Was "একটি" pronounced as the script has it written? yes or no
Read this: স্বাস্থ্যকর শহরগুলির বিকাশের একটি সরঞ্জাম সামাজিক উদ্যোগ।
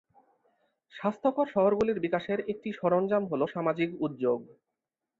yes